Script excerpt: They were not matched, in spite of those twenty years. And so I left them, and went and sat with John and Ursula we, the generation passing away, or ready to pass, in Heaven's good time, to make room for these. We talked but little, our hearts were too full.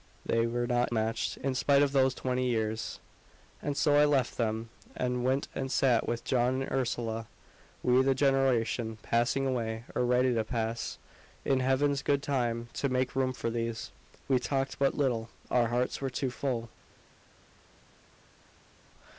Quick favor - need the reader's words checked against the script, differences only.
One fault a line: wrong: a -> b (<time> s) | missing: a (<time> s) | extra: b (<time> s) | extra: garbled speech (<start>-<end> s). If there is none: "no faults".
no faults